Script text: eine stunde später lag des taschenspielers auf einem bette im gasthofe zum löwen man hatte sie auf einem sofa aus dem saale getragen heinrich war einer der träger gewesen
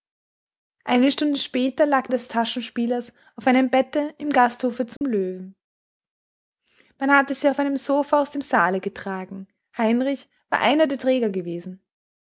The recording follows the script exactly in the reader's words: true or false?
true